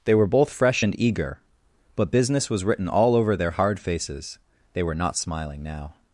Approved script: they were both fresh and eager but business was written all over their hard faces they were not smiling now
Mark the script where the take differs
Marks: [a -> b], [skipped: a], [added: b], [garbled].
they were both fresh and eager but business was written all over their hard faces they were not smiling now